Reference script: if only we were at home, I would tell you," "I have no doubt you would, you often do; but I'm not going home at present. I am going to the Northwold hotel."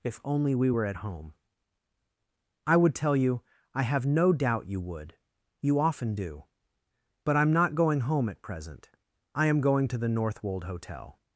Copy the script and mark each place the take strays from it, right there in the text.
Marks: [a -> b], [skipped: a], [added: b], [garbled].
if only we were at home, I would tell you," "I have no doubt you would, you often do; but I'm not going home at present. I am going to the Northwold hotel."